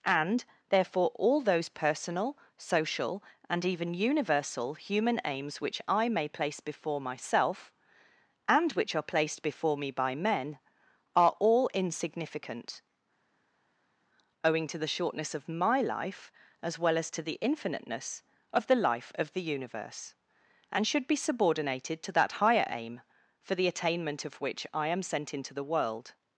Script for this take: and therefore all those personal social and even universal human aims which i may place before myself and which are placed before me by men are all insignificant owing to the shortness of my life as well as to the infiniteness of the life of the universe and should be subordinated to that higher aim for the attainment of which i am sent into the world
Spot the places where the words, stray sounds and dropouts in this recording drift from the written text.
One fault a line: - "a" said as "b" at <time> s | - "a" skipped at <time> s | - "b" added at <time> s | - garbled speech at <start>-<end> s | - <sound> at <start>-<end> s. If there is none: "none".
none